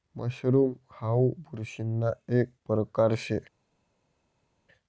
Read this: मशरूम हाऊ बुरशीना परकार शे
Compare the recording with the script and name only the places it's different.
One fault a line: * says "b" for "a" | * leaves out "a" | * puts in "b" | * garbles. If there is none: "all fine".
* puts in "एक"